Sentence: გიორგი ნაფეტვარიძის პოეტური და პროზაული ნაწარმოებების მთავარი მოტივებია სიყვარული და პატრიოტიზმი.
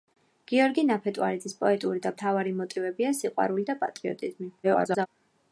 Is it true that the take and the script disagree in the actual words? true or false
true